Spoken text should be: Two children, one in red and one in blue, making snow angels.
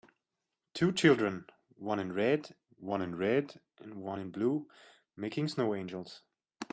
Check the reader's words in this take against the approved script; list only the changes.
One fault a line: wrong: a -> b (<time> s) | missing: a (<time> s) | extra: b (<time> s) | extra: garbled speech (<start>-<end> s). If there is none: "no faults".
extra: one in red (2.8 s)